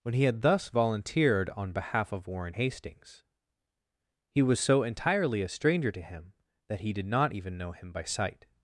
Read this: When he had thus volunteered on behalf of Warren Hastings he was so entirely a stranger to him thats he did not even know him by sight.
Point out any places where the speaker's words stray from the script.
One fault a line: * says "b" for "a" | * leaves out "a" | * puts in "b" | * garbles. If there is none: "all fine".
* says "that" for "thats"